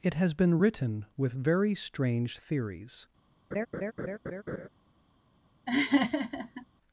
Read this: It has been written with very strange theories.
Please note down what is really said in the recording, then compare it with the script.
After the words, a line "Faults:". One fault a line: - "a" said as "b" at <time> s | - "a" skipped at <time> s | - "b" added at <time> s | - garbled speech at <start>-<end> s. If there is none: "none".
It has been written with very strange theories.
Faults:
none